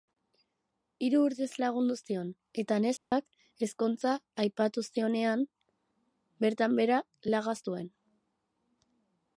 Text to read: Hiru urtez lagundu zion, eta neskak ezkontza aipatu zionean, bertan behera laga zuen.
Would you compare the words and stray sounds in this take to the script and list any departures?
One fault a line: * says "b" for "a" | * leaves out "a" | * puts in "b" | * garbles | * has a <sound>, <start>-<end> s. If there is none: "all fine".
* has a dropout, 3.0-3.1 s